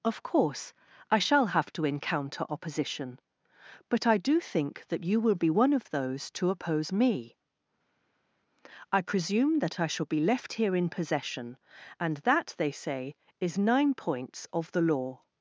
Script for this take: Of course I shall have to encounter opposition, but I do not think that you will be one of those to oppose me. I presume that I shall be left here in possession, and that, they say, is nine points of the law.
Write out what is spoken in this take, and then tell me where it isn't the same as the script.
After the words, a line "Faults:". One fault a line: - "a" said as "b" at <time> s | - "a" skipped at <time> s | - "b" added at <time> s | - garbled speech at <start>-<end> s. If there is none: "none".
Of course I shall have to encounter opposition, but I do think that you will be one of those to oppose me. I presume that I shall be left here in possession, and that, they say, is nine points of the law.
Faults:
- "not" skipped at 4.4 s